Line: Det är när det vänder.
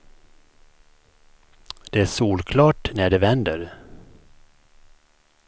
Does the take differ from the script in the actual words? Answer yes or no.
yes